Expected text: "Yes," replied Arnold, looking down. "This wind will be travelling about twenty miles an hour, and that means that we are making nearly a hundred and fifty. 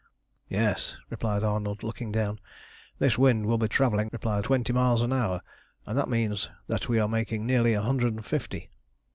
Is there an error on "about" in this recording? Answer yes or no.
yes